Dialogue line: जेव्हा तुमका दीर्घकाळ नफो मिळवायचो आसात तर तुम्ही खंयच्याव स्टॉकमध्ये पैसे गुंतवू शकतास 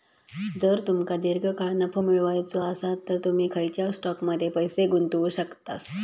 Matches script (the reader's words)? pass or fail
fail